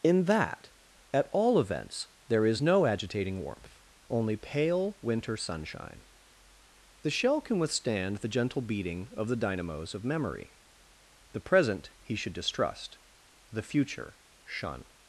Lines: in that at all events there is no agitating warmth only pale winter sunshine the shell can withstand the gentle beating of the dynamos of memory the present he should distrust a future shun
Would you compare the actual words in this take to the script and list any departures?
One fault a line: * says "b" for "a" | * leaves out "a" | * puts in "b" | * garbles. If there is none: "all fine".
* says "the" for "a"